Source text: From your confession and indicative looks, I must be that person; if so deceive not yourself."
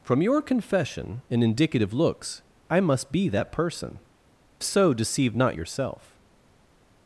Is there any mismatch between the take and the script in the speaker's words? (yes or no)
yes